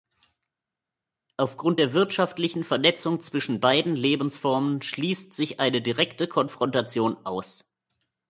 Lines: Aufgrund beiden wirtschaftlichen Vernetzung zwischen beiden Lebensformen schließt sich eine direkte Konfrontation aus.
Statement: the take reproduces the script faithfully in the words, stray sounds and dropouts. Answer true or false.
false